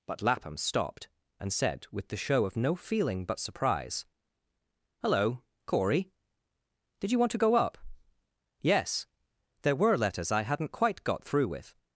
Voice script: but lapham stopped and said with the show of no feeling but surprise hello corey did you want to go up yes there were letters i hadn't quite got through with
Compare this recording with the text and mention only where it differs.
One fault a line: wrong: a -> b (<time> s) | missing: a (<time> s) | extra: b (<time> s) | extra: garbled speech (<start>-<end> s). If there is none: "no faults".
no faults